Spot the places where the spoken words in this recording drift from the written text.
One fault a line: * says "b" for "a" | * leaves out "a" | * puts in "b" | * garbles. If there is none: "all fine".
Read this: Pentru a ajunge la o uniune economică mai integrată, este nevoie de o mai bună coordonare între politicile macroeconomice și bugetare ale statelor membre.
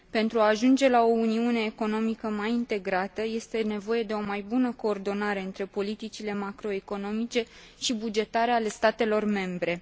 all fine